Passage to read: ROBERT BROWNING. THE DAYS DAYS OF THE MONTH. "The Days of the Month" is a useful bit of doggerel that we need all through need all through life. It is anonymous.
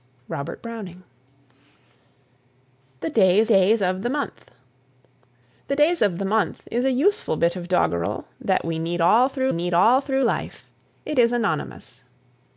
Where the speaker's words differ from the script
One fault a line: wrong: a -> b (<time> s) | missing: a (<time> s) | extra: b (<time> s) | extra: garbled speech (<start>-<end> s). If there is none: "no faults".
no faults